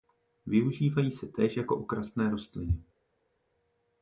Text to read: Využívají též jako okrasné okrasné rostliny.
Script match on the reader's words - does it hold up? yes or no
no